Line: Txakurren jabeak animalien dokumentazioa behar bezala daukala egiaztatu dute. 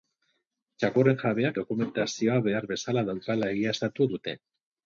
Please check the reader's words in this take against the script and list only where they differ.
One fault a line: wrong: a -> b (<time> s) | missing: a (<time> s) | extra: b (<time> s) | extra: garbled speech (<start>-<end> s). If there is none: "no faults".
missing: animalien (1.6 s)